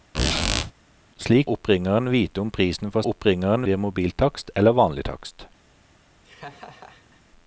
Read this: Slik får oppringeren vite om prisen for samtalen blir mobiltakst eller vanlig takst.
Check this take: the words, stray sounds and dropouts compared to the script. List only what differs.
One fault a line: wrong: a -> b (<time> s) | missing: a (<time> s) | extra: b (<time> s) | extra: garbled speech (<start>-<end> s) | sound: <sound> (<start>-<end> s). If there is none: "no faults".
sound: squeak (0.1-0.7 s)
missing: får (1.5 s)
wrong: samtalen -> oppringeren (3.1 s)
sound: laugh (6.2-7.2 s)